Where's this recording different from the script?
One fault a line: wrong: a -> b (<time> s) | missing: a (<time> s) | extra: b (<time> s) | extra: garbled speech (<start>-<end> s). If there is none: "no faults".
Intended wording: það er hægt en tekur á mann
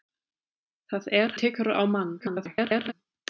missing: hægt en (1.4 s)
extra: garbled speech (2.2-2.9 s)